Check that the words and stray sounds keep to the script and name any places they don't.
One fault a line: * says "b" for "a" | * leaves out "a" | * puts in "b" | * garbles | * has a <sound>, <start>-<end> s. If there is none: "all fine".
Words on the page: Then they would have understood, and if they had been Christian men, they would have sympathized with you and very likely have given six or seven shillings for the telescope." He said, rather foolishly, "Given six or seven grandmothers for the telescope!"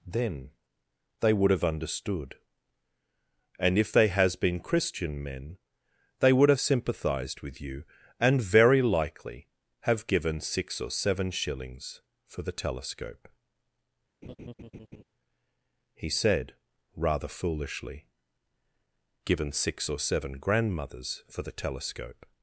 * says "has" for "had"
* has a laugh, 14.2-15.0 s